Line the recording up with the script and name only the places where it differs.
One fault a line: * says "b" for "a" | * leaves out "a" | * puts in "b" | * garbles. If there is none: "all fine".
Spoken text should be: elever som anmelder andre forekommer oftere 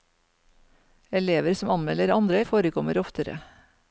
all fine